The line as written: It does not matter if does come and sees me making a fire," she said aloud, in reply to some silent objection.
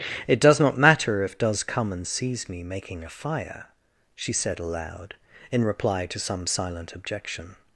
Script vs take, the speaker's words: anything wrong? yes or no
no